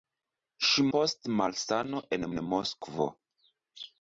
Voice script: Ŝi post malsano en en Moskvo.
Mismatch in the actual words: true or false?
false